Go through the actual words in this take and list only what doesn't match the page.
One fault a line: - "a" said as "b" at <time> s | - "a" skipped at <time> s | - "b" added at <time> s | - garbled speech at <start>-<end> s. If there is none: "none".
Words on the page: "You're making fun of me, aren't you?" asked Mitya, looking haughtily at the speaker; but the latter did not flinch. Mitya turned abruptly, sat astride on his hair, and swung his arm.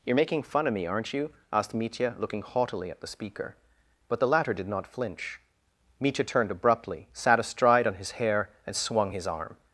none